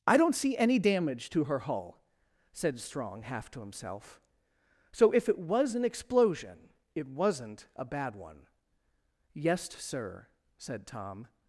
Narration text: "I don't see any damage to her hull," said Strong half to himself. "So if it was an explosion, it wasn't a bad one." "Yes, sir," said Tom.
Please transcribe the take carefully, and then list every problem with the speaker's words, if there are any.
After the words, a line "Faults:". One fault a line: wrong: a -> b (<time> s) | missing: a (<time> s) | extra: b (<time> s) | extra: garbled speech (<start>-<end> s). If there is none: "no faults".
"I don't see any damage to her hull," said Strong half to himself. "So if it was an explosion, it wasn't a bad one." "Yes, sir," said Tom.
Faults:
no faults